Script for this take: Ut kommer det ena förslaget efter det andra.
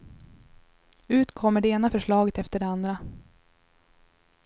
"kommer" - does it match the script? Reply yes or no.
yes